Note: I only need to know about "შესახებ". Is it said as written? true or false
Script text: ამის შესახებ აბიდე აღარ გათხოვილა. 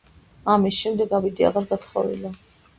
false